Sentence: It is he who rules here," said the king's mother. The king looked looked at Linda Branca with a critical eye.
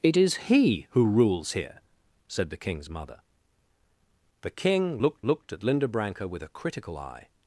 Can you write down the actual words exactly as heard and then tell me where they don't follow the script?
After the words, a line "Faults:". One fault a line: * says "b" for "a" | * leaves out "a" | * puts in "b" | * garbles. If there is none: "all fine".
It is he who rules here," said the king's mother. The king looked looked at Linda Branca with a critical eye.
Faults:
all fine